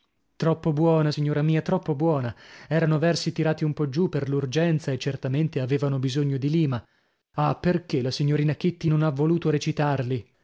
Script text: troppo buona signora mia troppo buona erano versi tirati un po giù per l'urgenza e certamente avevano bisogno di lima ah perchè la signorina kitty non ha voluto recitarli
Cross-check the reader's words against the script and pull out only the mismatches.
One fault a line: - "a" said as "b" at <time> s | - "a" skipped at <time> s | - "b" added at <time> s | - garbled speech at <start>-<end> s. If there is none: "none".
none